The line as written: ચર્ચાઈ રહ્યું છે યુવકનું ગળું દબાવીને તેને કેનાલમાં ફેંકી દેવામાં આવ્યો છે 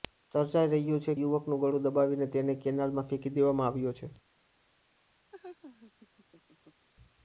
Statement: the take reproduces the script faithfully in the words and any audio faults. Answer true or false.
false